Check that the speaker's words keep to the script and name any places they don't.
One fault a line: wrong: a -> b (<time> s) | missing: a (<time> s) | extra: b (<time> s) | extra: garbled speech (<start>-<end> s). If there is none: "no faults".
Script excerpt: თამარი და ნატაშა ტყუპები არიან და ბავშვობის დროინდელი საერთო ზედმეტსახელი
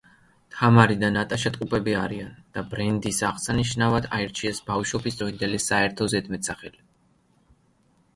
extra: ბრენდის აღსანიშნავად აირჩიეს (2.7 s)